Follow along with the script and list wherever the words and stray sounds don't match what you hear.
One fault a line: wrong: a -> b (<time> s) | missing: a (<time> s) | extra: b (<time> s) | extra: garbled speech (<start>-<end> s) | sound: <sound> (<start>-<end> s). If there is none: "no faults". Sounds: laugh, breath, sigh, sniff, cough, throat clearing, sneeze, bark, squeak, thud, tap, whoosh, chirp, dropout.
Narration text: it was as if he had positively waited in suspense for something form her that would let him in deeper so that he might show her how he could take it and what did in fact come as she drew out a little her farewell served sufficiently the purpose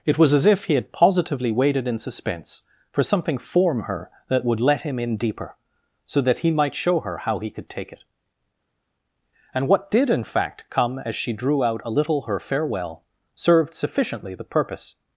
no faults